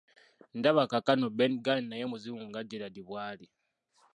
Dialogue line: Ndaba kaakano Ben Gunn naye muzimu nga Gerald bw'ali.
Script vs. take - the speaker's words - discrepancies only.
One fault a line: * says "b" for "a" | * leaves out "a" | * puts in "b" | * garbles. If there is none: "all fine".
all fine